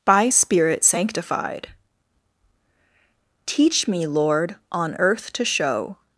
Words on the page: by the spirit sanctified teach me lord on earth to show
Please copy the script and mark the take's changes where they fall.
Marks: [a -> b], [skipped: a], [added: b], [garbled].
by [skipped: the] spirit sanctified teach me lord on earth to show